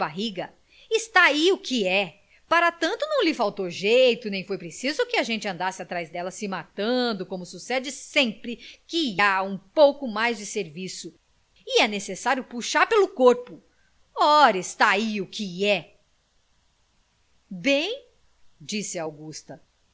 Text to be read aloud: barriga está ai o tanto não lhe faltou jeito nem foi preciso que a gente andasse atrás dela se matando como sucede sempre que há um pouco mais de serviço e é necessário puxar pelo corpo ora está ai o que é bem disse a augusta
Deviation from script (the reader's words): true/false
true